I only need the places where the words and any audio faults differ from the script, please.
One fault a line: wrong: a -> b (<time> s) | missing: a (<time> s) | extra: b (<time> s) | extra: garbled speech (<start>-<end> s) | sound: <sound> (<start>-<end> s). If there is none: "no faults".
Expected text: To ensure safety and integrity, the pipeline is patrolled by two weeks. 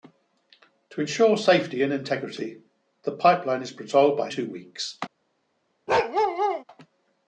sound: bark (5.9-6.6 s)